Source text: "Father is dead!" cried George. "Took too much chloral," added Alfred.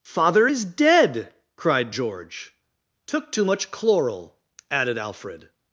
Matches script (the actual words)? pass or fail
pass